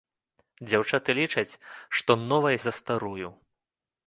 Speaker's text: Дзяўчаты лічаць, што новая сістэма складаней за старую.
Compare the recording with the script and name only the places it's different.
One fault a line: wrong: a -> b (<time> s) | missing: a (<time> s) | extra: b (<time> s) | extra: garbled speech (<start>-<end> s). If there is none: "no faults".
missing: сістэма складаней (2.6 s)